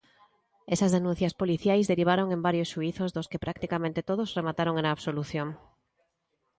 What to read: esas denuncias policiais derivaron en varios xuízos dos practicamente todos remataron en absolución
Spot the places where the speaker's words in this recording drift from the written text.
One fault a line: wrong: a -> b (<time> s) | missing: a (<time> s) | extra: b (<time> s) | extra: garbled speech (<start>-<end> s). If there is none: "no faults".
extra: que (3.3 s)